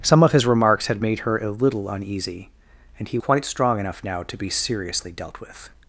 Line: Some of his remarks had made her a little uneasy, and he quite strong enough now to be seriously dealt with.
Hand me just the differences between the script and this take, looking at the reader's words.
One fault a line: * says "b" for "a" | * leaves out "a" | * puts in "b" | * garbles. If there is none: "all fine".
all fine